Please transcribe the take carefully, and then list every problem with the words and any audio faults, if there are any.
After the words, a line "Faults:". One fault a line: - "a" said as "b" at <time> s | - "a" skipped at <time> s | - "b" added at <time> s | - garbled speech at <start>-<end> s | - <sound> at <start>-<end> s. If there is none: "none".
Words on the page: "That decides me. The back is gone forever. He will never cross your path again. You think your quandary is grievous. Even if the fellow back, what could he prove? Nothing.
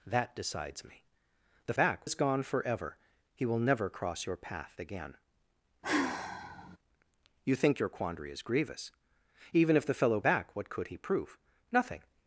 "That decides me. The back is gone forever. He will never cross your path again. You think your quandary is grievous. Even if the fellow back, what could he prove? Nothing.
Faults:
- sigh at 5.8-6.8 s